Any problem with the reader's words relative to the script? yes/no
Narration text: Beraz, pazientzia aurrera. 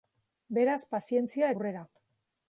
no